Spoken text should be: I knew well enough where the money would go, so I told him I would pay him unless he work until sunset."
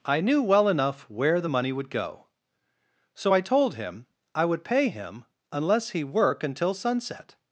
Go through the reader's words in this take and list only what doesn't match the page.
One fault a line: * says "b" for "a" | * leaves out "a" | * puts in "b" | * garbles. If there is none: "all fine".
all fine